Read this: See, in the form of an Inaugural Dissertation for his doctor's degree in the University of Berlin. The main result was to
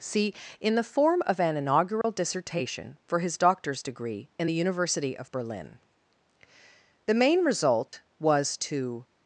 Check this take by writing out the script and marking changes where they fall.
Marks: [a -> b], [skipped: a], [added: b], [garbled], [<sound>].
See, in the form of an Inaugural [dropout] Dissertation for his doctor's degree in the University of Berlin. The main result [dropout] was to